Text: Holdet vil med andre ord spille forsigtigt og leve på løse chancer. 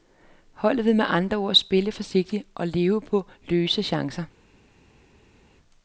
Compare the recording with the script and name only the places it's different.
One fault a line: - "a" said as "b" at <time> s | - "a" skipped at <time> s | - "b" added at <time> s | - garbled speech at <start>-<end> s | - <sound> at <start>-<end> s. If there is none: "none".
none